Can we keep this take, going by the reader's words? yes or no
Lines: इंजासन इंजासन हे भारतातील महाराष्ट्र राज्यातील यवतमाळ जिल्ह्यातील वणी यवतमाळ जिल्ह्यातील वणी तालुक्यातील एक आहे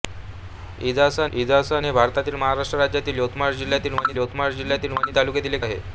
yes